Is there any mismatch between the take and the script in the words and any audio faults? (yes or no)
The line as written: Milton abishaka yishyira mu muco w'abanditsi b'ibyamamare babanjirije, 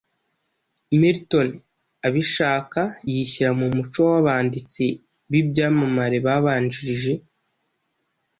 no